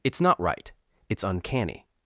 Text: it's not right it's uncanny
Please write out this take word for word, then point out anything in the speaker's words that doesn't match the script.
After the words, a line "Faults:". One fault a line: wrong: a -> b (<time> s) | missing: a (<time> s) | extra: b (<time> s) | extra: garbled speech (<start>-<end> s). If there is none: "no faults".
it's not right it's uncanny
Faults:
no faults